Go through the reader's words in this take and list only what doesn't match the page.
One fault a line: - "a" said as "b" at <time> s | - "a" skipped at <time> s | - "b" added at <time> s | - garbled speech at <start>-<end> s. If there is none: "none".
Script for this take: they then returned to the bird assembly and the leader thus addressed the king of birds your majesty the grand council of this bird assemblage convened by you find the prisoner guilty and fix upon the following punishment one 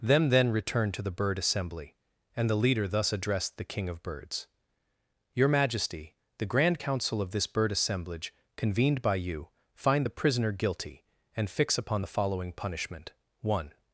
- "they" said as "them" at 0.0 s